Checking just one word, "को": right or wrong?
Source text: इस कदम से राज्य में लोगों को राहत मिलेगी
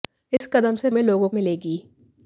wrong